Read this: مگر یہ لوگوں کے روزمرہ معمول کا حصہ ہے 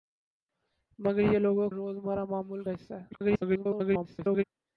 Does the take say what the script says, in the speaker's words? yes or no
no